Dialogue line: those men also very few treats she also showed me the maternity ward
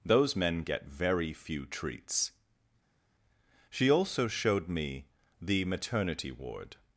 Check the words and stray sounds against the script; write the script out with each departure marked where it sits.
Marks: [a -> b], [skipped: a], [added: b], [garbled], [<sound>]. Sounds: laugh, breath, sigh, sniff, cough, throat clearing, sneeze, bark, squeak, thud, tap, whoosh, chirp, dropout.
those men [also -> get] very few treats she also showed me the maternity ward